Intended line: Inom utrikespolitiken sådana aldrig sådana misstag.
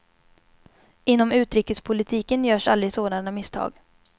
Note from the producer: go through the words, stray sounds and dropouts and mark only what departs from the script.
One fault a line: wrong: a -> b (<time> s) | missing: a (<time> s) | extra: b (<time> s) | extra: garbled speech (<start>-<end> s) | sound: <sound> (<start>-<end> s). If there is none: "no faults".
wrong: sådana -> görs (2.4 s)